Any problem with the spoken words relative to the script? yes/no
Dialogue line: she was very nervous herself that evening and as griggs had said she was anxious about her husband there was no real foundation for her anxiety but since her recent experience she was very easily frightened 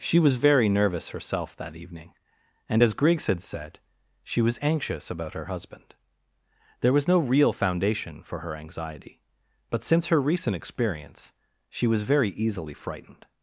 no